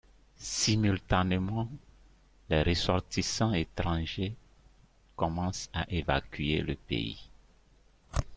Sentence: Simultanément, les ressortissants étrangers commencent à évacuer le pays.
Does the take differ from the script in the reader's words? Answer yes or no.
no